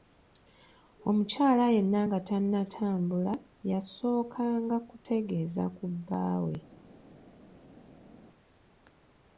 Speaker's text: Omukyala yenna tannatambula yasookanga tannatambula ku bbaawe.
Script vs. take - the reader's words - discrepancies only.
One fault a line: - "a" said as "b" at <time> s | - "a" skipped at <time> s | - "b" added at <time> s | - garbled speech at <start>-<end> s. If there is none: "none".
- "nga" added at 2.0 s
- "tannatambula" said as "kutegeeza" at 4.9 s